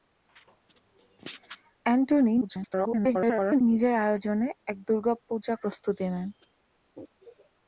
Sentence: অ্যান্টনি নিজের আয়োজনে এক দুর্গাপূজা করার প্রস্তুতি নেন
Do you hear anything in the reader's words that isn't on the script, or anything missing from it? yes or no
yes